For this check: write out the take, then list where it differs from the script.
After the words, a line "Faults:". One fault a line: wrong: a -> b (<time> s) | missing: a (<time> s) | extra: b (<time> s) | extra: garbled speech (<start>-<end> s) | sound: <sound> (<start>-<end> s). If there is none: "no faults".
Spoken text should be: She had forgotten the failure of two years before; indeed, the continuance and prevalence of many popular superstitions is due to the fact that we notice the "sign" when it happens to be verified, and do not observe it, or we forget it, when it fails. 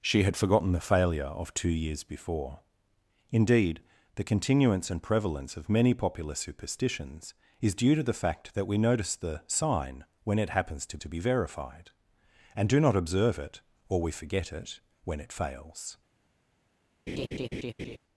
She had forgotten the failure of two years before; indeed, the continuance and prevalence of many popular superstitions is due to the fact that we notice the "sign" when it happens to to be verified, and do not observe it, or we forget it, when it fails.
Faults:
extra: to (11.0 s)
sound: laugh (17.1-18.0 s)